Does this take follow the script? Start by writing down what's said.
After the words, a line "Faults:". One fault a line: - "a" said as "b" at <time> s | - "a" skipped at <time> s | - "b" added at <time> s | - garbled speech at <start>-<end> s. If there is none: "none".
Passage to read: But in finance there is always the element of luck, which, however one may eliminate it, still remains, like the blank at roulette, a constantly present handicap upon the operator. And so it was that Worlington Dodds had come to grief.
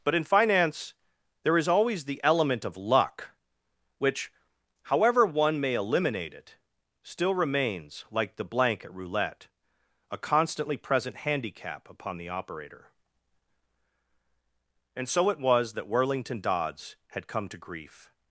But in finance there is always the element of luck, which, however one may eliminate it, still remains, like the blank at roulette, a constantly present handicap upon the operator. And so it was that Worlington Dodds had come to grief.
Faults:
none